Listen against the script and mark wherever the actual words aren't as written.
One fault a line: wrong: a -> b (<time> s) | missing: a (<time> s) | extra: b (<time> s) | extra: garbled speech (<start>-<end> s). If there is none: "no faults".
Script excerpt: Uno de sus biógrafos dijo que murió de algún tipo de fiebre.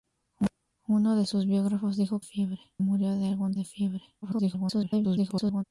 wrong: que -> fiebre (2.2 s)
missing: tipo (3.5 s)
extra: garbled speech (4.2-5.6 s)